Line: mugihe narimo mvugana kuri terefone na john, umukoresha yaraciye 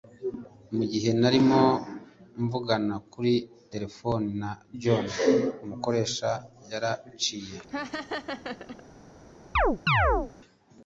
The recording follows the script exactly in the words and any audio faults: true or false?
false